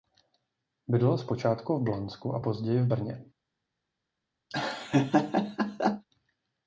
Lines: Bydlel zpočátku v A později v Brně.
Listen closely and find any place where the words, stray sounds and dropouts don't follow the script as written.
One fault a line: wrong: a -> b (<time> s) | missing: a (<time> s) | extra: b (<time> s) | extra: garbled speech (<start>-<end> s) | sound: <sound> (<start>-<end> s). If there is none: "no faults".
extra: Blansku (1.8 s)
sound: laugh (4.5-6.1 s)